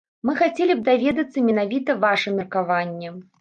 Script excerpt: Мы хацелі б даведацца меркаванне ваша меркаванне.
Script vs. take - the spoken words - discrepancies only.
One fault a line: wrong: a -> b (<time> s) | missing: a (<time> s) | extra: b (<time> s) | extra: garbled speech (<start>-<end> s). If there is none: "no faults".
wrong: меркаванне -> менавіта (1.5 s)